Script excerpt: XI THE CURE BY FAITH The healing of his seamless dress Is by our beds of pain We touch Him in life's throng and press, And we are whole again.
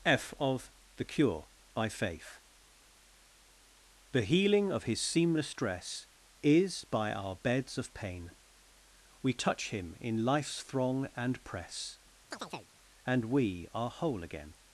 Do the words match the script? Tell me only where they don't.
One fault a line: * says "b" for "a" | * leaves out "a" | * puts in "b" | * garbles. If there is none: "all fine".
* says "F of" for "XI"